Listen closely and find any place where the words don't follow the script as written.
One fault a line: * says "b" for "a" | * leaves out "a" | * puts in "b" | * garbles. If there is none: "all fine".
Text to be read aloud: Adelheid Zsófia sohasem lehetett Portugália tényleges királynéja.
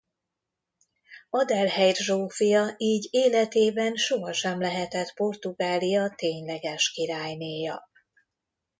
* puts in "így életében"